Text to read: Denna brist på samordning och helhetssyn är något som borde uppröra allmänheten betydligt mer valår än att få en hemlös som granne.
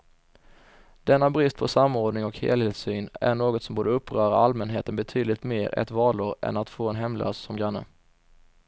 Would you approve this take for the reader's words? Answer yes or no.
no